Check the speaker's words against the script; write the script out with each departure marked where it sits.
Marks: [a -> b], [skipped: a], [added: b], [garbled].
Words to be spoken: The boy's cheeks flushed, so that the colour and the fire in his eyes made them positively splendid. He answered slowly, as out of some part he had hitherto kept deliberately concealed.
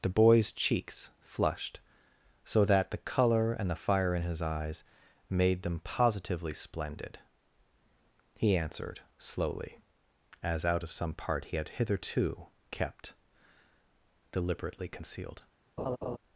The boy's cheeks flushed, so that the colour and the fire in his eyes made them positively splendid. He answered slowly, as out of some part he had hitherto kept deliberately concealed.